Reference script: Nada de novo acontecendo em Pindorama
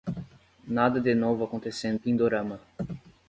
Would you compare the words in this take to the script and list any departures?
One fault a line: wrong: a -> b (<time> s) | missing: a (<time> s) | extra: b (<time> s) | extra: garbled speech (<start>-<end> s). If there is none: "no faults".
missing: em (2.0 s)